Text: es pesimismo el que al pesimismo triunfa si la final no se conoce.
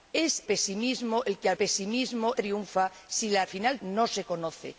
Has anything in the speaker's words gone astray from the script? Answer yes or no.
no